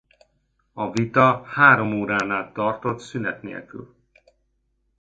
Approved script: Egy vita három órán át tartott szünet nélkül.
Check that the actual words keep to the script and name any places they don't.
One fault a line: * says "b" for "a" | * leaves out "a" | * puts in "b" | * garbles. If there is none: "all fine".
* says "A" for "Egy"